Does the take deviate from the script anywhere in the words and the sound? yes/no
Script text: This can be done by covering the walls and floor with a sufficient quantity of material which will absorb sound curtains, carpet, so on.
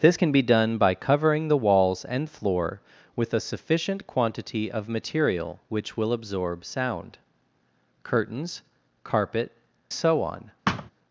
yes